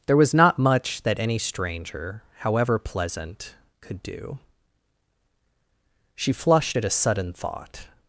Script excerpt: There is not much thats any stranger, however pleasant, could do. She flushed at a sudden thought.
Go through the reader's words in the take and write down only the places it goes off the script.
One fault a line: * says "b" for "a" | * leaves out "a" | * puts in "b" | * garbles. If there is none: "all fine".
* says "was" for "is"
* says "that" for "thats"